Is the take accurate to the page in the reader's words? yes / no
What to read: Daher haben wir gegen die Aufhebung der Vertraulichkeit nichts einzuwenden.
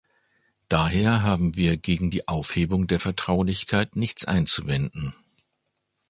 yes